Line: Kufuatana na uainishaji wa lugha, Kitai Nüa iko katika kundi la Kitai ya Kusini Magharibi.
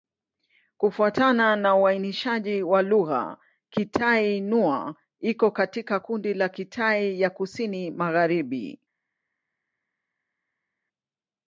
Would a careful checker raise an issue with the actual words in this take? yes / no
no